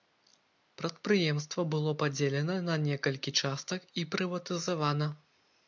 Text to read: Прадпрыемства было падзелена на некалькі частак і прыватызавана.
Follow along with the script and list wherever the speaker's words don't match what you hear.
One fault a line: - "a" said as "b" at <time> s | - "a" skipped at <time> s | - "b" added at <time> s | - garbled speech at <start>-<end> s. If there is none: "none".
none